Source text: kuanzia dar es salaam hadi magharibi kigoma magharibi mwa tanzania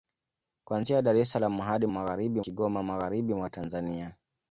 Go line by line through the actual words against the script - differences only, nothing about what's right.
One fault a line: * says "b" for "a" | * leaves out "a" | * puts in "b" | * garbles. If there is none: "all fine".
all fine